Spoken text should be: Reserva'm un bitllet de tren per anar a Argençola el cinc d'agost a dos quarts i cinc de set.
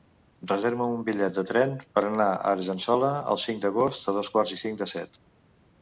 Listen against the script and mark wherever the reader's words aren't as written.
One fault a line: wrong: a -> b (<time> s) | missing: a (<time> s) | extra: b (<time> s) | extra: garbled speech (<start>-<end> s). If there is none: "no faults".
no faults